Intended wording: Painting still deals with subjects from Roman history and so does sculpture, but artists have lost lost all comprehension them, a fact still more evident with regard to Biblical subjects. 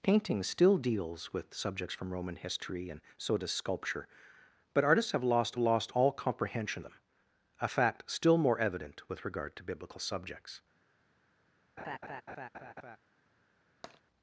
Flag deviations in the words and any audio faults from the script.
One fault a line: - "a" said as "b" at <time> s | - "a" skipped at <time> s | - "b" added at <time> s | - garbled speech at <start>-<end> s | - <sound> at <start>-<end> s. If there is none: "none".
- laugh at 11.8-13.0 s
- tap at 13.8-14.0 s